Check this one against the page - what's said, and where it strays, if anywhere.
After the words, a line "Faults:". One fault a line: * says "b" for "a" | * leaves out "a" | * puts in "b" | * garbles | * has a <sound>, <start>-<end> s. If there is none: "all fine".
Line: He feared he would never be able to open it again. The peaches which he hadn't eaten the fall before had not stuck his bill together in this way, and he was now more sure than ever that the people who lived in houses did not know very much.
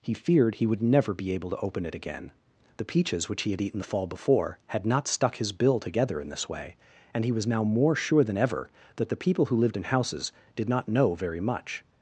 He feared he would never be able to open it again. The peaches which he had eaten the fall before had not stuck his bill together in this way, and he was now more sure than ever that the people who lived in houses did not know very much.
Faults:
* says "had" for "hadn't"